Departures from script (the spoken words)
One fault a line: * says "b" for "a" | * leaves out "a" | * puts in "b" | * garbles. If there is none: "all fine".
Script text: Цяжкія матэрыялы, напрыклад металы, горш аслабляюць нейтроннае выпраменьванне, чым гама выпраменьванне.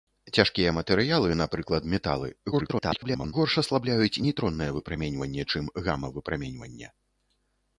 * garbles